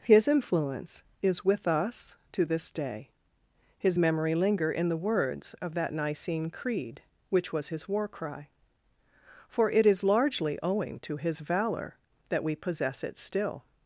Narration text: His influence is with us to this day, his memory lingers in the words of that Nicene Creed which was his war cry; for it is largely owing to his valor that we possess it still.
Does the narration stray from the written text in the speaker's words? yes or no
yes